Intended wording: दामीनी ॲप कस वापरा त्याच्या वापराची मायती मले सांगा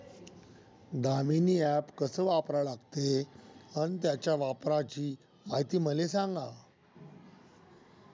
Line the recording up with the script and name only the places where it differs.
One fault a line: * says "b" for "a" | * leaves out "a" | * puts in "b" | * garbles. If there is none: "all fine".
* puts in "लागते अन"